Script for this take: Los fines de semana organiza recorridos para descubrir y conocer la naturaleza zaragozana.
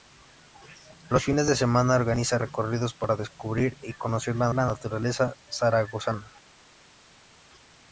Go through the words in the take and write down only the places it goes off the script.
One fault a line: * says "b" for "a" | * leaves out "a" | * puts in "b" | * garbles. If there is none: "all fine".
* puts in "la"